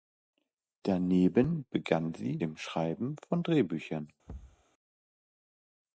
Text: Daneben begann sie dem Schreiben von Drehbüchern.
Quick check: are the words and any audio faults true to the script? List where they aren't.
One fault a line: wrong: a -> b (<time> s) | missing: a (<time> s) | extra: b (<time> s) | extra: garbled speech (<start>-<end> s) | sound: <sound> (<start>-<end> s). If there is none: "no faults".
sound: thud (4.3-4.6 s)